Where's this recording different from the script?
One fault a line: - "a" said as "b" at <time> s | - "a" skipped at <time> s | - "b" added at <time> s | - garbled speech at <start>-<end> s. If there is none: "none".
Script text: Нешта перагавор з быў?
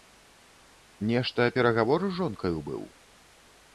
- "жонкаю" added at 2.2 s